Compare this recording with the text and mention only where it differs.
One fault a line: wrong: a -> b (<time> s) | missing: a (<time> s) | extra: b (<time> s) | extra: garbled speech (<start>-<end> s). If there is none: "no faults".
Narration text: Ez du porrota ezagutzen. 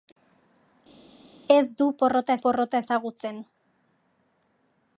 extra: porrota (2.5 s)